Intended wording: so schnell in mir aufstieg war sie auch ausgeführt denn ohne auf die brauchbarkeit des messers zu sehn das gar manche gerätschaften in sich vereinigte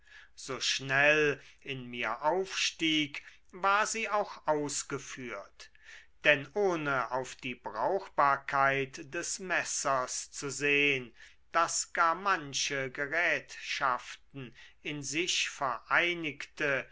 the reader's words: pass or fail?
pass